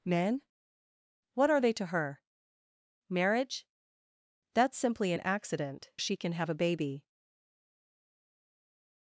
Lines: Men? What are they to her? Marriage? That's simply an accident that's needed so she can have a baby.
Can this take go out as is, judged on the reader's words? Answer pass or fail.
fail